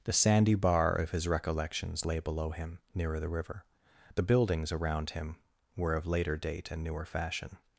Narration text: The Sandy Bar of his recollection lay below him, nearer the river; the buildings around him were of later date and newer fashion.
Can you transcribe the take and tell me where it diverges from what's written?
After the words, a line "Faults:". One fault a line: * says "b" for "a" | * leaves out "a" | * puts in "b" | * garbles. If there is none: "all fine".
The Sandy Bar of his recollections lay below him, nearer the river; the buildings around him were of later date and newer fashion.
Faults:
* says "recollections" for "recollection"